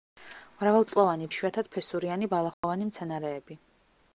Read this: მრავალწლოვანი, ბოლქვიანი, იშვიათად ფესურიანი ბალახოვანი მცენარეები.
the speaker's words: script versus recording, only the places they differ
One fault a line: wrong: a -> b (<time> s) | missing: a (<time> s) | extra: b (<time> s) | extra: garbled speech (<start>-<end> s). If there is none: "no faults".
missing: ბოლქვიანი (1.3 s)